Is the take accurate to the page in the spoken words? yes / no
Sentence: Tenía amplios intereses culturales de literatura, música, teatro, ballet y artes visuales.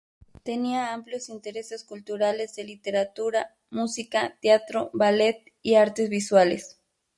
yes